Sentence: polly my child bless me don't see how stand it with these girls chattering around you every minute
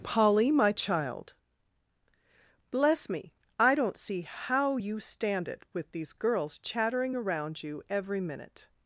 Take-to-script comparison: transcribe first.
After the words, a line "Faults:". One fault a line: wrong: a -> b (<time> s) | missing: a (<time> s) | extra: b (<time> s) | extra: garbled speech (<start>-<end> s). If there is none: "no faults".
polly my child bless me i don't see how you stand it with these girls chattering around you every minute
Faults:
extra: i (3.6 s)
extra: you (4.8 s)